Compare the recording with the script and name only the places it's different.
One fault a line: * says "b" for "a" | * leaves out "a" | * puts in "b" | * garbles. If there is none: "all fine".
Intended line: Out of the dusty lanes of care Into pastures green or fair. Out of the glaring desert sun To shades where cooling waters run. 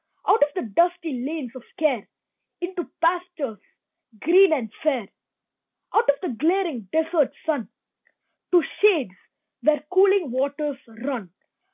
* says "and" for "or"